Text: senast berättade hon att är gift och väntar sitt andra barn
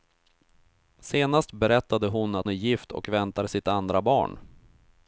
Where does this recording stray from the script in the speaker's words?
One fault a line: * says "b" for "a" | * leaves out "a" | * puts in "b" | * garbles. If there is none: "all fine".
all fine